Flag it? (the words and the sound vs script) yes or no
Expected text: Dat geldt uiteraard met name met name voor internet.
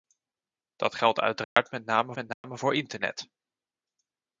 yes